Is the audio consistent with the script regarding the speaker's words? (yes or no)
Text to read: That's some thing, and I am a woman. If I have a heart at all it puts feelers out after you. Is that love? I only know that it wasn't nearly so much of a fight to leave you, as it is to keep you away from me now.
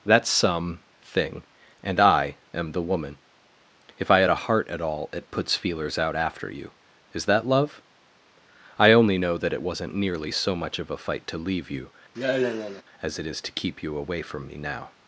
no